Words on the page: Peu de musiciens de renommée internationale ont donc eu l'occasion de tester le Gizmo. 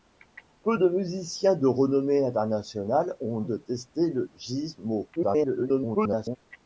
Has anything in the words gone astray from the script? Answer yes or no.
yes